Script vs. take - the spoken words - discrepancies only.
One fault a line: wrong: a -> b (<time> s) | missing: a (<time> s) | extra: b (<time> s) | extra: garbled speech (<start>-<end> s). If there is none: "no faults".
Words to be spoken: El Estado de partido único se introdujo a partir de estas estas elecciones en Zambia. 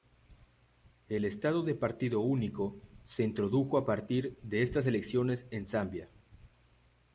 missing: estas (4.9 s)